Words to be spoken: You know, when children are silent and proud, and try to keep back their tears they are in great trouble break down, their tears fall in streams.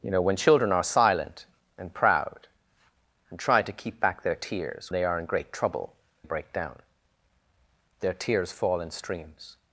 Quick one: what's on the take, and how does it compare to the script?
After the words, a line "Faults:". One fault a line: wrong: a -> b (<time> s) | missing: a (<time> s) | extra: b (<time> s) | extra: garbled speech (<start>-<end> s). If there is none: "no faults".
You know, when children are silent and proud, and try to keep back their tears they are in great trouble break down, their tears fall in streams.
Faults:
no faults